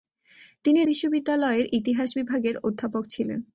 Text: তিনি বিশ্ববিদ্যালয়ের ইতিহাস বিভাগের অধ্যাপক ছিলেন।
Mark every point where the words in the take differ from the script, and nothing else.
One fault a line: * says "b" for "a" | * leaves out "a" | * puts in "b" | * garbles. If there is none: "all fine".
all fine